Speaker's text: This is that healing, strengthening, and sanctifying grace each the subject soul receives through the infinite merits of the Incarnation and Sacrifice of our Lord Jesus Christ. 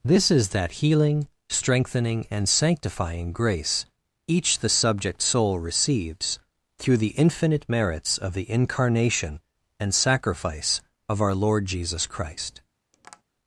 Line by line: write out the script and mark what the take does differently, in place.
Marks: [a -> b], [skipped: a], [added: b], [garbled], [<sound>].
This is that healing, strengthening, and sanctifying grace each the subject soul receives through the infinite merits of the Incarnation and Sacrifice of our Lord Jesus Christ. [tap]